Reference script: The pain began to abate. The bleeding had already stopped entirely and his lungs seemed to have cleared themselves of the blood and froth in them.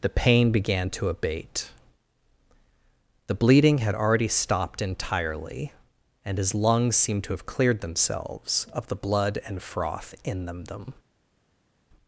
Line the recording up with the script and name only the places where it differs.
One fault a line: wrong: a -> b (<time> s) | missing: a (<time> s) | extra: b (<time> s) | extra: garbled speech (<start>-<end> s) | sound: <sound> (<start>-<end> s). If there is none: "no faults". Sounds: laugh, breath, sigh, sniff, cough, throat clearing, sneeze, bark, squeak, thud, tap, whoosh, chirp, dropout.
extra: them (10.7 s)